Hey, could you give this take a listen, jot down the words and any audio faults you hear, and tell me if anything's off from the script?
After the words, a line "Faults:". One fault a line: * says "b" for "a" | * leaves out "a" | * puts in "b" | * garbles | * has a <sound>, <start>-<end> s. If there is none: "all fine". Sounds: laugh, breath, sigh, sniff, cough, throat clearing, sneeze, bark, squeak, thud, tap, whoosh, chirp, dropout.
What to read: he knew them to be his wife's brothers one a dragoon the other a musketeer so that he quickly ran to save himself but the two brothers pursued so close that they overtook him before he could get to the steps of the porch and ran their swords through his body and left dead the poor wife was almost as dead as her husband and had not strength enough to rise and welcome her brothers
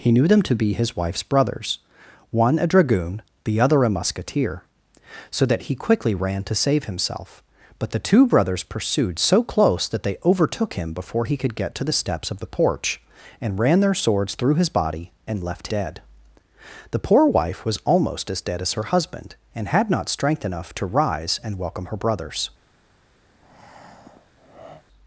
he knew them to be his wife's brothers one a dragoon the other a musketeer so that he quickly ran to save himself but the two brothers pursued so close that they overtook him before he could get to the steps of the porch and ran their swords through his body and left dead the poor wife was almost as dead as her husband and had not strength enough to rise and welcome her brothers
Faults:
* has a breath, 23.3-24.8 s